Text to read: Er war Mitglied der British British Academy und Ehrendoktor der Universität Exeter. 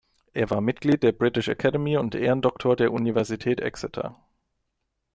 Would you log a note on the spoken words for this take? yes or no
yes